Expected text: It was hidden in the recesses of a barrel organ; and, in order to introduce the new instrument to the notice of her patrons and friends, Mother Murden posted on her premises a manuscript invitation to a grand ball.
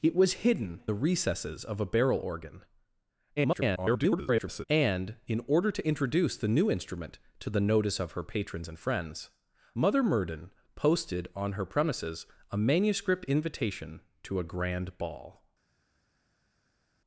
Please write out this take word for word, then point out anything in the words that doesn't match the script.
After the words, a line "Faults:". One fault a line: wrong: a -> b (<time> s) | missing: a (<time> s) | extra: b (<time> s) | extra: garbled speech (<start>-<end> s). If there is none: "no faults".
It was hidden the recesses of a barrel organ; [garbled] and, in order to introduce the new instrument to the notice of her patrons and friends, Mother Murden posted on her premises a manuscript invitation to a grand ball.
Faults:
missing: in (0.8 s)
extra: garbled speech (3.4-4.6 s)